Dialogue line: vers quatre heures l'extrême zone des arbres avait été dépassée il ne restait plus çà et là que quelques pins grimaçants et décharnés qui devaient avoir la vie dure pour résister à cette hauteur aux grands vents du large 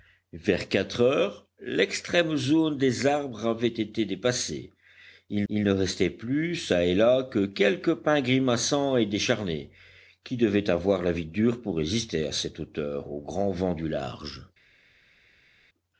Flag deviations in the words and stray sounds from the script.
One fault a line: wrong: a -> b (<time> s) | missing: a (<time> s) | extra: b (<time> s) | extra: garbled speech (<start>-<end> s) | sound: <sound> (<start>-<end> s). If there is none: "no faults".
extra: il (5.5 s)